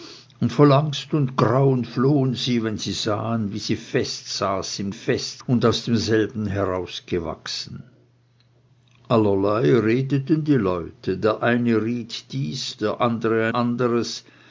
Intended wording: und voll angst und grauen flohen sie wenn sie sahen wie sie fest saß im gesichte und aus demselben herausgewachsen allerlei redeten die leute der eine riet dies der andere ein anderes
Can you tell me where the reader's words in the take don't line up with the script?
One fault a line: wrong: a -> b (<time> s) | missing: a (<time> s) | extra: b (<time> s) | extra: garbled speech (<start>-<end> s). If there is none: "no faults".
wrong: gesichte -> fest (4.9 s)
missing: ein (13.5 s)